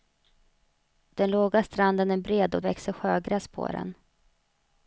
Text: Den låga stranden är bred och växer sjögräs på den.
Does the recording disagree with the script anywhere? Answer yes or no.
no